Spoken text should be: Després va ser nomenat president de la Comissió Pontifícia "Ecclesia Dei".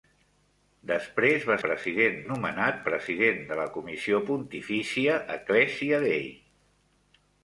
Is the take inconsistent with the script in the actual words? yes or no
yes